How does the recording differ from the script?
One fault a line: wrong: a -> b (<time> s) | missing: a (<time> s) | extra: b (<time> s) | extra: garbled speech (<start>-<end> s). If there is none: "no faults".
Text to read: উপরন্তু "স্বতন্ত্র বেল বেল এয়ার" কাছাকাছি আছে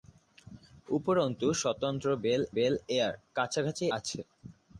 no faults